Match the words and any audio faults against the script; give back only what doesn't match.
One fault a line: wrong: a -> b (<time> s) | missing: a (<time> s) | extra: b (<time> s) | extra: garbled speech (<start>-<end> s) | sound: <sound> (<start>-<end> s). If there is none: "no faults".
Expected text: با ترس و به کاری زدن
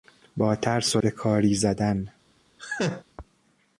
sound: laugh (2.6-3.0 s)